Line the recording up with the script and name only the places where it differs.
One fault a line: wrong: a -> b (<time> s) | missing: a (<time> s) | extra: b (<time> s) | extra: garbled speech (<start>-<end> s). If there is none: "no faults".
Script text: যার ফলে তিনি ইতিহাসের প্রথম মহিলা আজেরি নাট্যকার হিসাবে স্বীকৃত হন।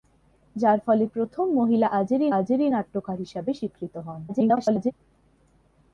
missing: তিনি ইতিহাসের (1.1 s)
extra: আজেরি (2.3 s)
extra: garbled speech (4.3-4.9 s)